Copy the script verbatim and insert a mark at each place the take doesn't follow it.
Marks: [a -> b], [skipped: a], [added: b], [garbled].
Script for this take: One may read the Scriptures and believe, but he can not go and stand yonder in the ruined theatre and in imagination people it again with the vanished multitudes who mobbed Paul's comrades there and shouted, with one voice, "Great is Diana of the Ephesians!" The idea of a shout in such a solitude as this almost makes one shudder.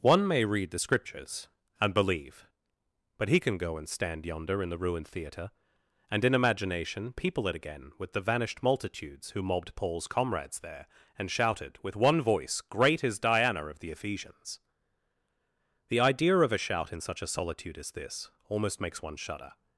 One may read the Scriptures and believe, but he can [skipped: not] go and stand yonder in the ruined theatre and in imagination people it again with the vanished multitudes who mobbed Paul's comrades there and shouted, with one voice, "Great is Diana of the Ephesians!" The idea of a shout in such a solitude as this almost makes one shudder.